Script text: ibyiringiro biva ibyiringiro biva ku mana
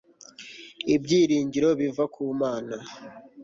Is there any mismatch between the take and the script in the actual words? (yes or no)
yes